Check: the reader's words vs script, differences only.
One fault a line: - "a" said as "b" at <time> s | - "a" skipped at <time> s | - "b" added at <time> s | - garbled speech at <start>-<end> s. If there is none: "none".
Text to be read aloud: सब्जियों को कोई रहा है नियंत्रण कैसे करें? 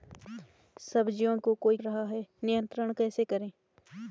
none